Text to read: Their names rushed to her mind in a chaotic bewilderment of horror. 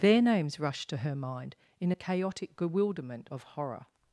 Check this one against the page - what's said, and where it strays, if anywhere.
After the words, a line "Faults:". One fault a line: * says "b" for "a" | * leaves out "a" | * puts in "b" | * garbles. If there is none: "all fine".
Their names rushed to her mind in a chaotic bewilderment of horror.
Faults:
all fine